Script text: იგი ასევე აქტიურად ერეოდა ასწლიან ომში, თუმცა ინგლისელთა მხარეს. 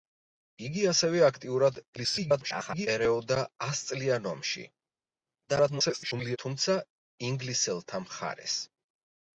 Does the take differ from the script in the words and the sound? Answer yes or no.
yes